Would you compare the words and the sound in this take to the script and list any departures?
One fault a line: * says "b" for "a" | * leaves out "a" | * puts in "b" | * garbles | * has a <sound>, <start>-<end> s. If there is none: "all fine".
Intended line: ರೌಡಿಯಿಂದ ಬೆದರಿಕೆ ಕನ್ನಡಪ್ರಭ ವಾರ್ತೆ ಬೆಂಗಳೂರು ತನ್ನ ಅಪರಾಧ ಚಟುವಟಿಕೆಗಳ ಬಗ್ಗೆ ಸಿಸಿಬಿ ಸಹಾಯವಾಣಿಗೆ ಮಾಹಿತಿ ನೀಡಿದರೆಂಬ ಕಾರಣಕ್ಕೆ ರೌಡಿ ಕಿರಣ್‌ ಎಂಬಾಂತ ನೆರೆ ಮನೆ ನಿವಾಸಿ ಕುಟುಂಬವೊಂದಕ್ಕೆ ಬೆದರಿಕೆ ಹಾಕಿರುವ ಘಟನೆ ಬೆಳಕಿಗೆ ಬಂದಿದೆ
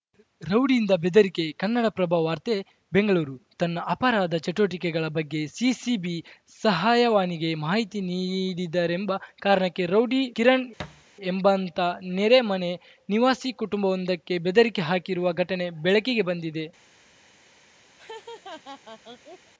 * has a thud, 10.8-11.0 s
* has a laugh, 18.0-19.5 s